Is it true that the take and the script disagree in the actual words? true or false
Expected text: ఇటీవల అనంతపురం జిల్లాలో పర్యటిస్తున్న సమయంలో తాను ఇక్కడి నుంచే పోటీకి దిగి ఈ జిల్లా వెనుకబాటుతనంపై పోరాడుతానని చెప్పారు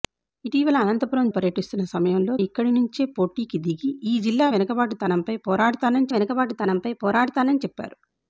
true